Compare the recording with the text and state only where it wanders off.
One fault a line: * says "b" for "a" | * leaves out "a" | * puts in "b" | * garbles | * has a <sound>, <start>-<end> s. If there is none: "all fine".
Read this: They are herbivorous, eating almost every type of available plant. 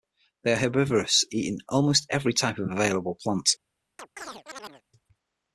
* has a chirp, 4.0-4.8 s